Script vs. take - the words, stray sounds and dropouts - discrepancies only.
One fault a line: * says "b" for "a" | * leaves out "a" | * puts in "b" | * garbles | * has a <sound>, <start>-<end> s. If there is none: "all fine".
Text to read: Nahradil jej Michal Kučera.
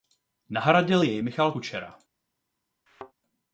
* has a thud, 2.9-3.1 s